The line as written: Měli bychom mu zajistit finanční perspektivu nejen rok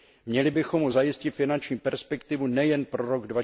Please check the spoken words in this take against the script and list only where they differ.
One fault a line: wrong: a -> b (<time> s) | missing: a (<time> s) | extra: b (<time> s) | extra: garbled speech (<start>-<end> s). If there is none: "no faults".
extra: pro (2.8 s)